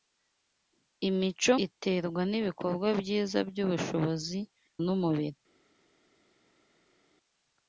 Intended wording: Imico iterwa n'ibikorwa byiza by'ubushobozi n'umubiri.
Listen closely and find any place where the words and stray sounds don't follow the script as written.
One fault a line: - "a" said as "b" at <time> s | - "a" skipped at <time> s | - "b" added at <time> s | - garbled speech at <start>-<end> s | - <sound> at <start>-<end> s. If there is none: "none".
none